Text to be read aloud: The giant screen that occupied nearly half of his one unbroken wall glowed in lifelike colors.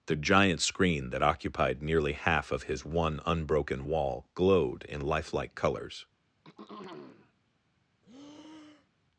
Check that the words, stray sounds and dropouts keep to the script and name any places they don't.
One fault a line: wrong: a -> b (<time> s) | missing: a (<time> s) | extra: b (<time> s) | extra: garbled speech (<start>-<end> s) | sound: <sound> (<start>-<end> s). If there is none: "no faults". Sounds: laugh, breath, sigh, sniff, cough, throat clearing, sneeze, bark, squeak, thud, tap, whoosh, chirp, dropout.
sound: throat clearing (6.4-7.3 s)
sound: breath (8.0-9.1 s)